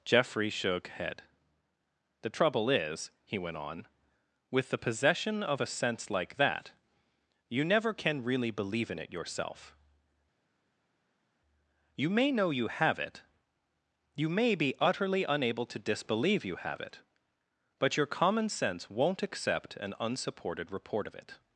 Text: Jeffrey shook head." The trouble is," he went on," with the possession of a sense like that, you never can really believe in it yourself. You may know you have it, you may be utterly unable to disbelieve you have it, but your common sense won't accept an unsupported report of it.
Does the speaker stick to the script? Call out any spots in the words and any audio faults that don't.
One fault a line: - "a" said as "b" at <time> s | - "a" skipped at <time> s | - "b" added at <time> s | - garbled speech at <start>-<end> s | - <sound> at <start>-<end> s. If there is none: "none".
none